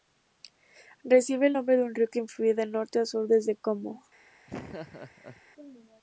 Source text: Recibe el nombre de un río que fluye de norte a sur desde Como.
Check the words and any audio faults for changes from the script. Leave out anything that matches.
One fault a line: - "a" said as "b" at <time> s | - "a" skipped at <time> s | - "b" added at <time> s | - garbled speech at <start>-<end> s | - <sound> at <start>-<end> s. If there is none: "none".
- laugh at 4.5-5.4 s